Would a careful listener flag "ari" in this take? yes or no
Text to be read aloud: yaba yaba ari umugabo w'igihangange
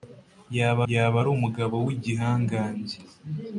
no